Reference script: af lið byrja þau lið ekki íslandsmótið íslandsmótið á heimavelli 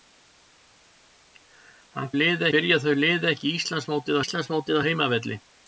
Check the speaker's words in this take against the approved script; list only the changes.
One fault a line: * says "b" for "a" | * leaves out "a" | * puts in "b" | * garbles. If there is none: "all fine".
all fine